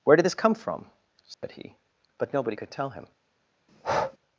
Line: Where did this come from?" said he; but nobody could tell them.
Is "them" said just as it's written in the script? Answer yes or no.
no